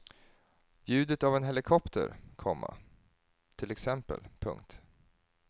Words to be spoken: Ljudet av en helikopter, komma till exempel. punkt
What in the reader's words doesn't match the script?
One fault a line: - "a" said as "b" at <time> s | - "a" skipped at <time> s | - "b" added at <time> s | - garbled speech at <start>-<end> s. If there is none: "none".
none